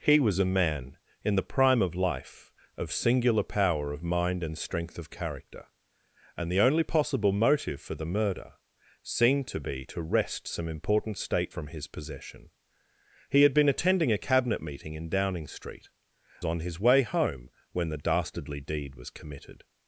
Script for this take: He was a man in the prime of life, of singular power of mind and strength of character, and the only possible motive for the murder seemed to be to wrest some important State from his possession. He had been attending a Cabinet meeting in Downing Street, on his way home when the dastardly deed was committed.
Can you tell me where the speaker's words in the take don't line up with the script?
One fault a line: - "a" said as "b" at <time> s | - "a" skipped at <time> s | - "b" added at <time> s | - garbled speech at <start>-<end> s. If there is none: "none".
none